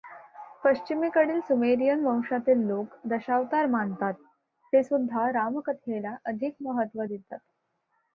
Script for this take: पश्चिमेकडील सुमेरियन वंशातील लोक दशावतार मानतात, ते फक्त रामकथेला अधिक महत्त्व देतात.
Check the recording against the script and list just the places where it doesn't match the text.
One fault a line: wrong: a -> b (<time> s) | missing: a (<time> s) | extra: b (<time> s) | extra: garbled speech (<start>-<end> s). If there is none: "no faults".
wrong: फक्त -> सुद्धा (4.8 s)